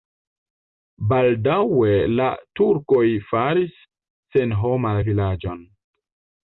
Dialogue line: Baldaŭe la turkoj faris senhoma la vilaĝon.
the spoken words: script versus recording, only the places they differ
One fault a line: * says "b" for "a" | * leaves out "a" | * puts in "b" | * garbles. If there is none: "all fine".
all fine